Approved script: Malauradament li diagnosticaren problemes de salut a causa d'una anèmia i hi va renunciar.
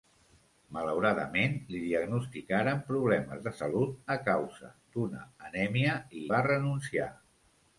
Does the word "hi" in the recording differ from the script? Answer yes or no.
yes